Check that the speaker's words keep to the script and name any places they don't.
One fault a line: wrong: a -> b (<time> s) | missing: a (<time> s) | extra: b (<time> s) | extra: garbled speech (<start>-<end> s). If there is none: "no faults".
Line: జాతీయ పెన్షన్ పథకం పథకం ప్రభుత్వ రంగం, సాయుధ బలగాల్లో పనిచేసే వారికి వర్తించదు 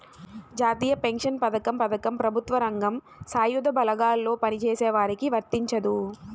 no faults